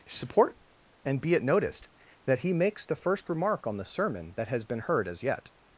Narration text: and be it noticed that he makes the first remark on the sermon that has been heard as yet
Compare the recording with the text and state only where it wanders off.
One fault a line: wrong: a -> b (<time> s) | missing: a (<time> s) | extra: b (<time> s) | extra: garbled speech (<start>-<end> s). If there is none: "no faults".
extra: support (0.1 s)